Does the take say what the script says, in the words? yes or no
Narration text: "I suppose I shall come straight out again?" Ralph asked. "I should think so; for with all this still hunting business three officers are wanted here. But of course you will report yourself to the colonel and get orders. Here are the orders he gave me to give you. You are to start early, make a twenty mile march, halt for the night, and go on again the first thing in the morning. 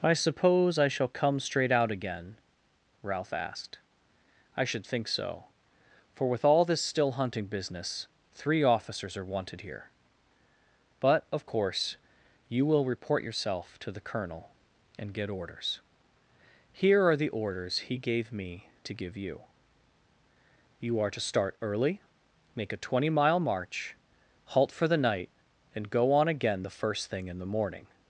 yes